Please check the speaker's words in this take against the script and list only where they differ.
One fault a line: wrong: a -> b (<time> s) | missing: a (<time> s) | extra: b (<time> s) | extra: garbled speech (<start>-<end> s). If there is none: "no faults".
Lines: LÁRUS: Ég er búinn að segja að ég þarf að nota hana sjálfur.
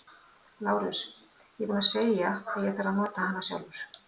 no faults